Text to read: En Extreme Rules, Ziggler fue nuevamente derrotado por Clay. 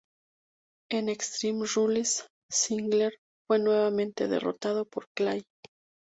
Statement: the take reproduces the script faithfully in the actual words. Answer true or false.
true